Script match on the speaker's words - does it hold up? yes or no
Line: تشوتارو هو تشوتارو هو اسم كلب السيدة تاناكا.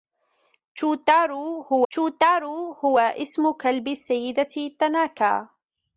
yes